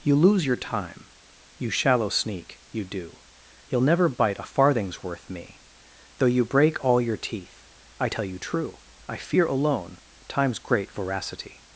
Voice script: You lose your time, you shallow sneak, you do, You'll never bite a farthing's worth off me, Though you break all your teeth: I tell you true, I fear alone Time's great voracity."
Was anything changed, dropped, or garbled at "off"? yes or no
yes